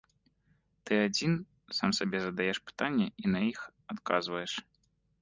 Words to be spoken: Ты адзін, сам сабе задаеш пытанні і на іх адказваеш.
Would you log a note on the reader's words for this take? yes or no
no